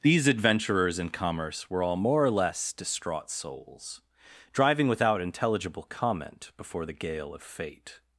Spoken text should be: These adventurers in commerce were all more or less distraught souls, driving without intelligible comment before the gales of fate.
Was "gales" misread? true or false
true